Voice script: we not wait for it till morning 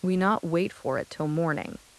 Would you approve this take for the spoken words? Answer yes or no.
yes